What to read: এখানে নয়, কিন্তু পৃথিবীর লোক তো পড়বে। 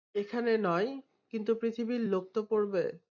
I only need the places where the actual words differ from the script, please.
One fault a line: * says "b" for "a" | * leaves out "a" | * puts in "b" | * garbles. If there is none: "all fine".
all fine